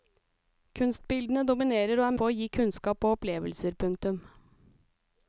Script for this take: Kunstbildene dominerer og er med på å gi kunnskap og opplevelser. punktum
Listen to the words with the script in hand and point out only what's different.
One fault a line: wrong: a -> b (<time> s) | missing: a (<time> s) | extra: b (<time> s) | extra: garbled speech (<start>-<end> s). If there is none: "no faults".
missing: med (2.1 s)